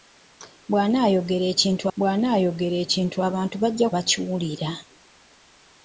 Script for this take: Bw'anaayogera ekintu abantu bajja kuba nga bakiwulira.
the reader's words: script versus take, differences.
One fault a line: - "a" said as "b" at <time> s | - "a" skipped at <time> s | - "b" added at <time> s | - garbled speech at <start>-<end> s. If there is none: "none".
- "bw'anaayogera ekintu" added at 2.0 s
- "kuba nga" skipped at 3.9 s